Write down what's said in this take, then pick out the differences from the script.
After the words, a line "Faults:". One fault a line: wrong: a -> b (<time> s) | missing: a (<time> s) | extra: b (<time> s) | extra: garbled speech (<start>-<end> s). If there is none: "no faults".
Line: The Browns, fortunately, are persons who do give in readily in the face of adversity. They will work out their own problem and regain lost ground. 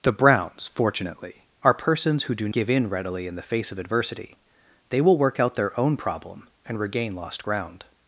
The Browns, fortunately, are persons who do give in readily in the face of adversity. They will work out their own problem and regain lost ground.
Faults:
no faults